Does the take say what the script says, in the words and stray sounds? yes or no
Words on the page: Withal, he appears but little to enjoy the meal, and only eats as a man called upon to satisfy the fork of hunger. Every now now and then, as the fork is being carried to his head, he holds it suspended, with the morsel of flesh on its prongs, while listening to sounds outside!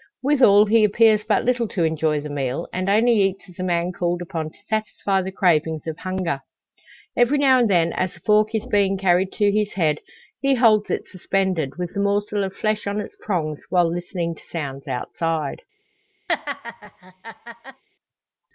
no